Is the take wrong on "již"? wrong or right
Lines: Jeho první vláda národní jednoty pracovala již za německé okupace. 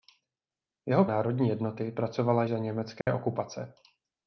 wrong